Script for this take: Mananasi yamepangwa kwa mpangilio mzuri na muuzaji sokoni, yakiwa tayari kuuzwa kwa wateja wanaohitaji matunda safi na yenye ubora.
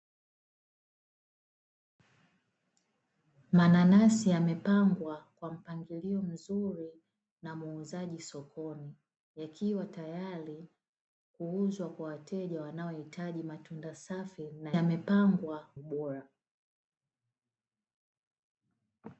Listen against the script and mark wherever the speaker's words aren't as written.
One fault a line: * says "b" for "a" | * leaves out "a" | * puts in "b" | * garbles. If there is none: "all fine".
* says "yamepangwa" for "yenye"